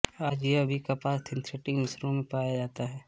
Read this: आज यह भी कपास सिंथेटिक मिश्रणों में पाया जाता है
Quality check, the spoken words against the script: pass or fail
pass